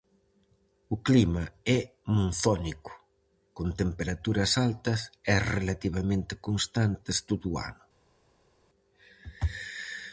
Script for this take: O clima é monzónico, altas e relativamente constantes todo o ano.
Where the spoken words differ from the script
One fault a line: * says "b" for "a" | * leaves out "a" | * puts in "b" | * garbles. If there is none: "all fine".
* puts in "con temperaturas"